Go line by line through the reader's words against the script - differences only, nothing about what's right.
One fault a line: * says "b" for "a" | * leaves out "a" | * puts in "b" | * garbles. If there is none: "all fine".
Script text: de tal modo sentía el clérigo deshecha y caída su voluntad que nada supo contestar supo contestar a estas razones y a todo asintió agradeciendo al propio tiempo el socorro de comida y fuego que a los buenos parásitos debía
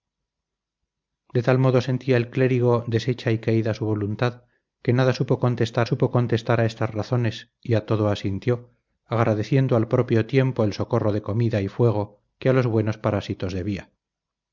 all fine